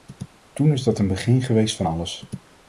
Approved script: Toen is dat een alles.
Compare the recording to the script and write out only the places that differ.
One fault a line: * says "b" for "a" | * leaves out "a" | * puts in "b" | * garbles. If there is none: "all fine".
* puts in "begin geweest van"